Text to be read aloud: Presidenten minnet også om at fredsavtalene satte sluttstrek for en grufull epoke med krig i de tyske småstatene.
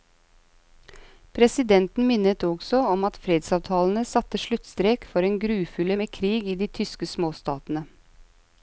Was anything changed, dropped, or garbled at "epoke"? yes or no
yes